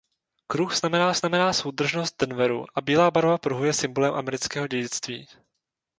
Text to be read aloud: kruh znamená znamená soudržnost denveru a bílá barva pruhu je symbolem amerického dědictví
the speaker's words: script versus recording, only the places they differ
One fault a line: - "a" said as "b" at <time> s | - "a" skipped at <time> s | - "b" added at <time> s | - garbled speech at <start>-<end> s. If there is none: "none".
none